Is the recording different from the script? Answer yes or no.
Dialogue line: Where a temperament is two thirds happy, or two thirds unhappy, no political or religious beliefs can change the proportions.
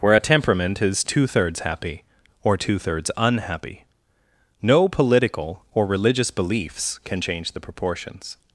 no